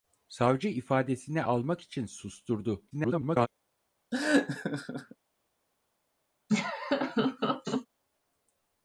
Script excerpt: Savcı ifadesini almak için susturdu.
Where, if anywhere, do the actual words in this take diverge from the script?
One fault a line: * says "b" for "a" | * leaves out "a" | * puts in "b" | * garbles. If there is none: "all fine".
* garbles